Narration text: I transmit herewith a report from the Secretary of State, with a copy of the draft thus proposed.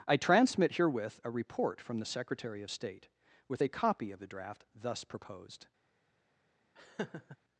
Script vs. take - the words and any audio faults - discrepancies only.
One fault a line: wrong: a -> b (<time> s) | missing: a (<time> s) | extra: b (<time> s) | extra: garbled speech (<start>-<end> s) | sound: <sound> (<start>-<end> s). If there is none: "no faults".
sound: laugh (6.8-7.4 s)